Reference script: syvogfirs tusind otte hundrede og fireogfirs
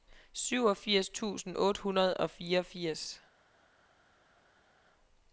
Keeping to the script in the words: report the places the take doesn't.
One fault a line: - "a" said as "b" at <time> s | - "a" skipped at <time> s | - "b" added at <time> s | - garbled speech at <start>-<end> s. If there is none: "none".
none